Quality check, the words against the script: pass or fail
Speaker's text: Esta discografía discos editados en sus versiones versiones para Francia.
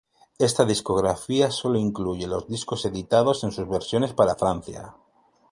fail